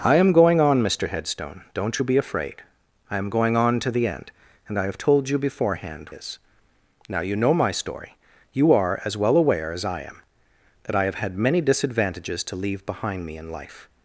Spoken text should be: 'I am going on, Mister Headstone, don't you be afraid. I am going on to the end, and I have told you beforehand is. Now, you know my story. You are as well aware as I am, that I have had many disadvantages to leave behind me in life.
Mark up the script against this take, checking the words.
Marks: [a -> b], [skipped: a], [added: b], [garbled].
'I am going on, Mister Headstone, don't you be afraid. I am going on to the end, and I have told you beforehand is. Now, you know my story. You are as well aware as I am, that I have had many disadvantages to leave behind me in life.